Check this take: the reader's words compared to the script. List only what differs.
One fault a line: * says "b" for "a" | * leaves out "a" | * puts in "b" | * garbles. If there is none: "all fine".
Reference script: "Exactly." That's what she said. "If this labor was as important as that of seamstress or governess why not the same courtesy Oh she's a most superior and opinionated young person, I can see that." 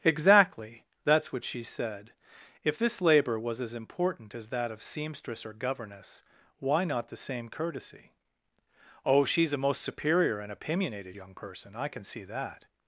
all fine